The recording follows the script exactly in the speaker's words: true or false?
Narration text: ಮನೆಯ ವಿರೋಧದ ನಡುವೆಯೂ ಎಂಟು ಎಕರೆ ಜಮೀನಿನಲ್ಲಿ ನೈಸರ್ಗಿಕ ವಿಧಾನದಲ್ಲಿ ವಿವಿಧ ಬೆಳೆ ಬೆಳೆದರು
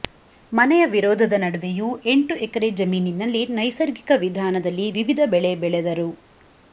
true